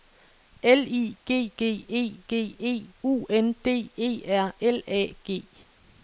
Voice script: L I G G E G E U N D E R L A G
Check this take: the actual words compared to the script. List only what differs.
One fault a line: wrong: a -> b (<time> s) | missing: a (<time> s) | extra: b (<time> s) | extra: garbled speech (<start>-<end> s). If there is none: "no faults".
no faults